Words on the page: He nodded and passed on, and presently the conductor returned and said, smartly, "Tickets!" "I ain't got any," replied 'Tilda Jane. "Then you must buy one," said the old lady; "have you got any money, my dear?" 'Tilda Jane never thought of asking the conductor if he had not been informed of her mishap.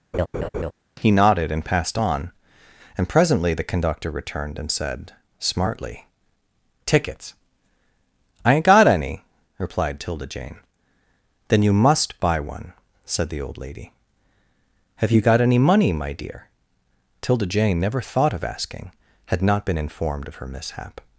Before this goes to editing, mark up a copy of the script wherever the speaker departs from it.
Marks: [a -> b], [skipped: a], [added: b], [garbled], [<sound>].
[laugh] He nodded and passed on, and presently the conductor returned and said, smartly, "Tickets!" "I ain't got any," replied 'Tilda Jane. "Then you must buy one," said the old lady; "have you got any money, my dear?" 'Tilda Jane never thought of asking [skipped: the conductor if he] had not been informed of her mishap.